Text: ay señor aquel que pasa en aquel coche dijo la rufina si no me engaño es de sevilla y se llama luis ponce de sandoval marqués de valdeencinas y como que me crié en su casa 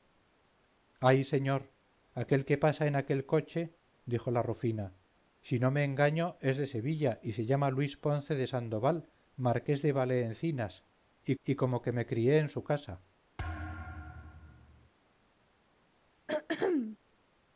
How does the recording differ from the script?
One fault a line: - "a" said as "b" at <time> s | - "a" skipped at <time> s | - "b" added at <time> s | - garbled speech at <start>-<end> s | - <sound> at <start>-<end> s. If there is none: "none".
- "y" added at 11.4 s
- thud at 13.4-14.9 s
- throat clearing at 16.3-17.0 s